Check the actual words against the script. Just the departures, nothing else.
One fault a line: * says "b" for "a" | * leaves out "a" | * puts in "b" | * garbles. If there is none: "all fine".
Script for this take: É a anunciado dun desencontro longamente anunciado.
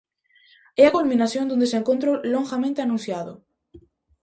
* says "culminación" for "anunciado"